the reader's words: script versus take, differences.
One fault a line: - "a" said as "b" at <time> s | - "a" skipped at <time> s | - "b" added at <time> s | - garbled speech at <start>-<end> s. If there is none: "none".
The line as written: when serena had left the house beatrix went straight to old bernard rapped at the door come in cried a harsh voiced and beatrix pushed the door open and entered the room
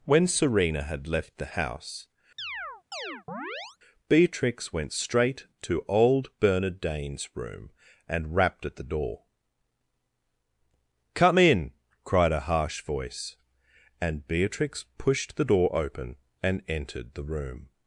- "dane's room and" added at 6.8 s
- "voiced" said as "voice" at 12.8 s